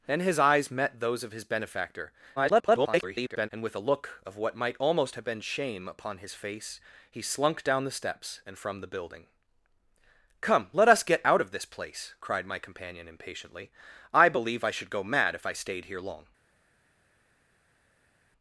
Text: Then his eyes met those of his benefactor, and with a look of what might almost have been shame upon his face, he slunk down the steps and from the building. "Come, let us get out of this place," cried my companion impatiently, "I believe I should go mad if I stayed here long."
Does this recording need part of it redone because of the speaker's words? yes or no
yes